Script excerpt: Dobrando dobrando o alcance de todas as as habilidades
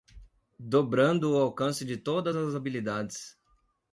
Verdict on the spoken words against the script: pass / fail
fail